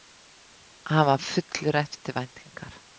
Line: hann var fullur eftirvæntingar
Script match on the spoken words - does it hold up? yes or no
yes